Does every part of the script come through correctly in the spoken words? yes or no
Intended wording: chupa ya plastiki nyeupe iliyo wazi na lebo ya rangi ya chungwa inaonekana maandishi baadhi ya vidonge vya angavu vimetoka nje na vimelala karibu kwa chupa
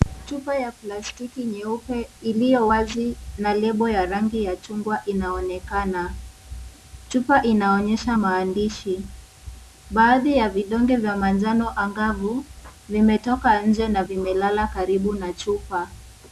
no